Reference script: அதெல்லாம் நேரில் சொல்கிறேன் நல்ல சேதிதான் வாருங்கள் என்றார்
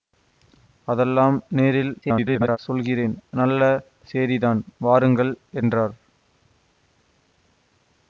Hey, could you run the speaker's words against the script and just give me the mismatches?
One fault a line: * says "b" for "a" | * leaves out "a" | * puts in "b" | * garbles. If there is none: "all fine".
* garbles